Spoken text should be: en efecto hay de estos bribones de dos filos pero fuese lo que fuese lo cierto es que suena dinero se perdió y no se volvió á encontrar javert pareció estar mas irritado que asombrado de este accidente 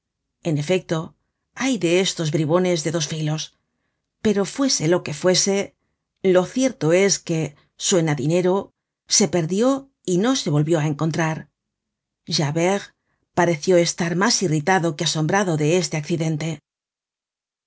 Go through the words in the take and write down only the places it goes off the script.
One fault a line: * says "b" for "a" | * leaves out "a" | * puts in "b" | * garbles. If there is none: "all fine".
all fine